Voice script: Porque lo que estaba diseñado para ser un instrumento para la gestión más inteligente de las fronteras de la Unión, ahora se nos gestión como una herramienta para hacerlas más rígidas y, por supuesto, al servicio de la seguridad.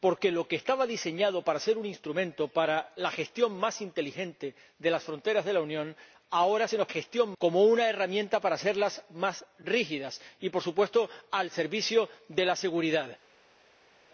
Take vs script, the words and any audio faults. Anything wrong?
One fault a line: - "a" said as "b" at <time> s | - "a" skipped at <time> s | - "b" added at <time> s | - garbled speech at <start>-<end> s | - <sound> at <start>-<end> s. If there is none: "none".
none